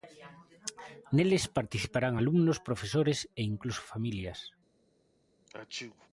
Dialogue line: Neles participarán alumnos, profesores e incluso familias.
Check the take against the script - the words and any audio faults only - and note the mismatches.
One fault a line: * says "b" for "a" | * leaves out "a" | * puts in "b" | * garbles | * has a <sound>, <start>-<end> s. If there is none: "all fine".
* has a sneeze, 5.5-6.1 s